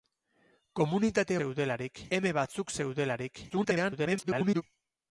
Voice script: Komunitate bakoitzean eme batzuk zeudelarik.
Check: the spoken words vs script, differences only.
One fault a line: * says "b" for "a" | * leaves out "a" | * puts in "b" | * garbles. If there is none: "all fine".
* says "zeudelarik" for "bakoitzean"
* garbles